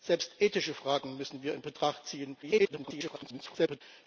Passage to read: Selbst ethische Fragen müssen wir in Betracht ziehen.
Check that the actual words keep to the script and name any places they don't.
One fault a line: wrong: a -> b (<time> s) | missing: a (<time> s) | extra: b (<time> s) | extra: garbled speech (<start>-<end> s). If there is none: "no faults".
extra: garbled speech (2.4-3.8 s)